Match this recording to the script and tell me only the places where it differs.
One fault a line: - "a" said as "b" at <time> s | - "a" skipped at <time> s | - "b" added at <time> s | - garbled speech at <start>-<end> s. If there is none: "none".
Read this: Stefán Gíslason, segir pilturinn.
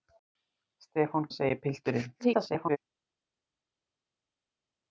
- "Gíslason" skipped at 1.3 s
- garbled speech at 2.2-2.8 s